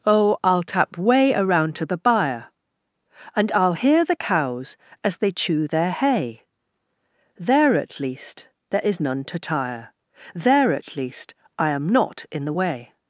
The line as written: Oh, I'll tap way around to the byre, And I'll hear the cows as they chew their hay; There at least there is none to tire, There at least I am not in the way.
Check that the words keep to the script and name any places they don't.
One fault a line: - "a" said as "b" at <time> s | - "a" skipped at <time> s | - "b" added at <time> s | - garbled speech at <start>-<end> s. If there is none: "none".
none